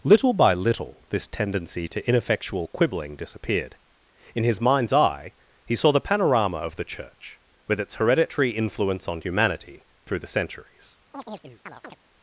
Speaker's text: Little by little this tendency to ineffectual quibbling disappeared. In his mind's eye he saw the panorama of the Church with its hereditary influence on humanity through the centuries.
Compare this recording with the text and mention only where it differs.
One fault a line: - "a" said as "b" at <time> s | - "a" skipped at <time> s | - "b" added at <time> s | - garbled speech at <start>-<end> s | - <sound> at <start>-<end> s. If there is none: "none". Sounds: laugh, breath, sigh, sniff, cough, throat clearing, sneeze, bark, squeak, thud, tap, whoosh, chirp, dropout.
- chirp at 11.1-12.0 s